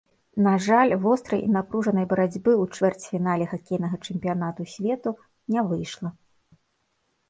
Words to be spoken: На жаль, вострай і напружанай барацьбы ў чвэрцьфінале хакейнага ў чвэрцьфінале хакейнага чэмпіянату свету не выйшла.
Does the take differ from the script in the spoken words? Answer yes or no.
yes